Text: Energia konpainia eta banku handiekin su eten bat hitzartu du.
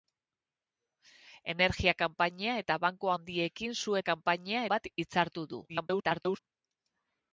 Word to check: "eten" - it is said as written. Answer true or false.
false